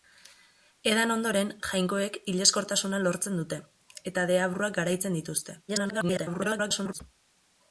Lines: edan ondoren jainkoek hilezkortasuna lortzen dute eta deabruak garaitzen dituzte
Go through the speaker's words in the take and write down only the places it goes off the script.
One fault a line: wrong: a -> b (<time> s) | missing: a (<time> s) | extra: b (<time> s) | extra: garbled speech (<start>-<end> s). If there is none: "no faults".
extra: garbled speech (5.7-7.0 s)